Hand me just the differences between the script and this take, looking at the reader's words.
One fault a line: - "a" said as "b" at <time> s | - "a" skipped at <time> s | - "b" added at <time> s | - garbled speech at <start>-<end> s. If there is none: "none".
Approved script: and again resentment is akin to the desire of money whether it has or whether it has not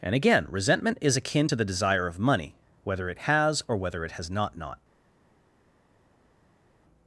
- "not" added at 4.6 s